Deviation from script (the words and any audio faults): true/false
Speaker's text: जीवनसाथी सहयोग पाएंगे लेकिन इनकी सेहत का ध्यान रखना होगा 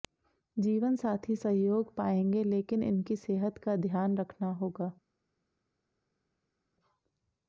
false